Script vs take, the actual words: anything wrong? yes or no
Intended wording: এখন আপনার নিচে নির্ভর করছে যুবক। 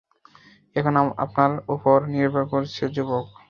yes